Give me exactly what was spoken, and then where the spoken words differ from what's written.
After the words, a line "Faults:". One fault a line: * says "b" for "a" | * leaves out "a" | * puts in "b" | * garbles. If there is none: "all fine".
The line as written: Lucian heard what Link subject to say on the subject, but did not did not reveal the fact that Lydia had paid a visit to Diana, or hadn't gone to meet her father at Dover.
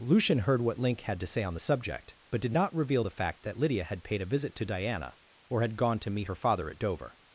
Lucian heard what Link had to say on the subject, but did not reveal the fact that Lydia had paid a visit to Diana, or had gone to meet her father at Dover.
Faults:
* says "had" for "subject"
* leaves out "did not"
* says "had" for "hadn't"